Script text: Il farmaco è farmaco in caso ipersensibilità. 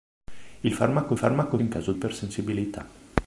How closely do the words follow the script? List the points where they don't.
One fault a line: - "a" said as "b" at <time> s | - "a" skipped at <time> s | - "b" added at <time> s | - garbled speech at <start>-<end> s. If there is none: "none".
none